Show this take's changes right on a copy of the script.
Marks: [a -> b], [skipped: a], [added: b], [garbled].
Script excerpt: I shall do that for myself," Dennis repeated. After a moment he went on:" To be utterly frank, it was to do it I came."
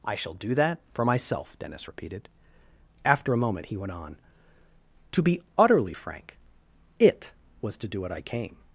I shall do that for myself," Dennis repeated. After a moment he went on:" To be utterly frank, it was to do [it -> what] I came."